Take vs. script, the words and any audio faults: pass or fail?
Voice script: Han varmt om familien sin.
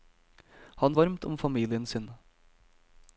pass